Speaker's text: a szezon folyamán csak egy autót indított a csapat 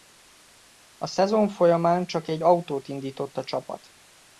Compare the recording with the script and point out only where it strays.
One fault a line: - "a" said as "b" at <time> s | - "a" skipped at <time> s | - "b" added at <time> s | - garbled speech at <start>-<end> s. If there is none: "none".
none